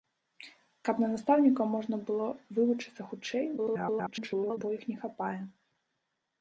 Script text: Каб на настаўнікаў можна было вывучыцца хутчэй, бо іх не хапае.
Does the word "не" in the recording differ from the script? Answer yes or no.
no